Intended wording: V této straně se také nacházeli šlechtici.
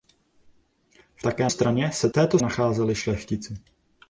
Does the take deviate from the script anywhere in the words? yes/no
yes